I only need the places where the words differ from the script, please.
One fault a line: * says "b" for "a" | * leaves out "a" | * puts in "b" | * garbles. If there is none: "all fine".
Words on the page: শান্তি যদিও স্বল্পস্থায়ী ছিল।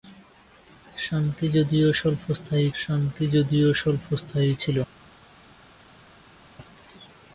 * puts in "শান্তি যদিও স্বল্পস্থায়ী"